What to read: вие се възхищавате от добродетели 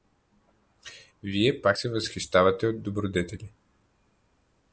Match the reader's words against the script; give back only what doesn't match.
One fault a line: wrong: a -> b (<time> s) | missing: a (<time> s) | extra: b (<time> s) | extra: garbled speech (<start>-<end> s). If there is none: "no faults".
extra: пак (1.6 s)